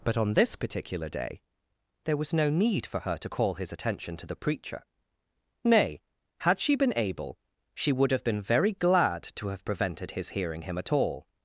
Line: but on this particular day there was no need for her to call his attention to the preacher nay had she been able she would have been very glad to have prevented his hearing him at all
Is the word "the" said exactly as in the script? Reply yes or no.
yes